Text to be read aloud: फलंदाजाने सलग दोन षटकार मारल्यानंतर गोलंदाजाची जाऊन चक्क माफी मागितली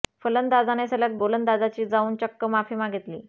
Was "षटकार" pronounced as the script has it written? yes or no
no